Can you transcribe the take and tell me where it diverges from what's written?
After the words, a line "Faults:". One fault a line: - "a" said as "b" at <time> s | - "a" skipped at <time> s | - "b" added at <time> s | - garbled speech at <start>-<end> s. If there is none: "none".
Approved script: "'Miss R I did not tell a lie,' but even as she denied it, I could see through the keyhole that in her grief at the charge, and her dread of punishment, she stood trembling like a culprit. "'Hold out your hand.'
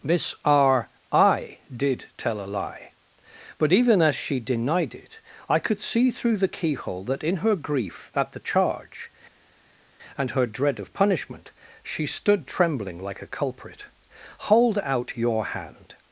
"'Miss R I did tell a lie,' but even as she denied it, I could see through the keyhole that in her grief at the charge, and her dread of punishment, she stood trembling like a culprit. "'Hold out your hand.'
Faults:
- "not" skipped at 2.1 s